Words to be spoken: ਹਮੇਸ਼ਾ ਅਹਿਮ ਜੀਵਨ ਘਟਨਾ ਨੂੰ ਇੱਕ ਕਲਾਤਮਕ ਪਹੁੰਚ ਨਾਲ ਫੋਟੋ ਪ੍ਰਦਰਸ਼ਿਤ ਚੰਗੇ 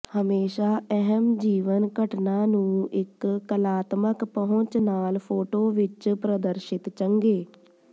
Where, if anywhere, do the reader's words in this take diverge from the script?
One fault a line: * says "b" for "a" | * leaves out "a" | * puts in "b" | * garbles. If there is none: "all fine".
* puts in "ਵਿੱਚ"